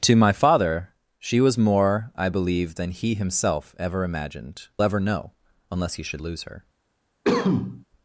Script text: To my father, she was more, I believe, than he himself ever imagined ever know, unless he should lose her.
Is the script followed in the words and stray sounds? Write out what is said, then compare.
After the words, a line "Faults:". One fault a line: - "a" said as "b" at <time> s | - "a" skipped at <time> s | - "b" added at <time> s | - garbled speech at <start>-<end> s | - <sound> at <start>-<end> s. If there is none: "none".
To my father, she was more, I believe, than he himself ever imagined ever know, unless he should lose her.
Faults:
- cough at 7.2-7.8 s